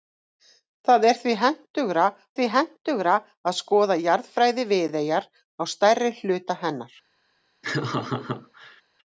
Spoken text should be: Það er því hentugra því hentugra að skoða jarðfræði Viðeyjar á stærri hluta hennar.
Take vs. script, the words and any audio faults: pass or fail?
fail